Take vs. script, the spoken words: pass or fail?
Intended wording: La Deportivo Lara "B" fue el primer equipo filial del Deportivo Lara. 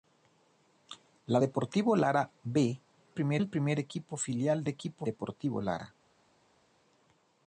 fail